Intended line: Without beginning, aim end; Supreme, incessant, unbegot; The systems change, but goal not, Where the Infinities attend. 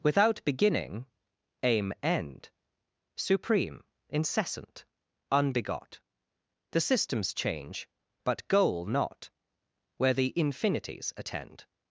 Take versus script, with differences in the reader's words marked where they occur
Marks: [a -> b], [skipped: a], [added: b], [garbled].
Without beginning, aim end; Supreme, incessant, unbegot; The systems change, but goal not, Where the Infinities attend.